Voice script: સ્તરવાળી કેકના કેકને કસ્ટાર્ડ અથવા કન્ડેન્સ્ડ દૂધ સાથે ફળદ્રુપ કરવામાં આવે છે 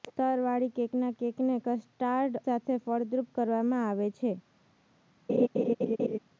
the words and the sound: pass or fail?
fail